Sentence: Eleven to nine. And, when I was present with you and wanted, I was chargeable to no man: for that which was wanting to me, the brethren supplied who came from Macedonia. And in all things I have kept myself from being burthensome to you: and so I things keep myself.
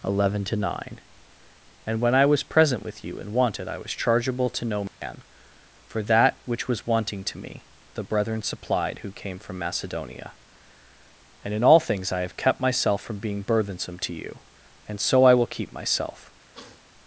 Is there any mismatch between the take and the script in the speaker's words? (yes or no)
yes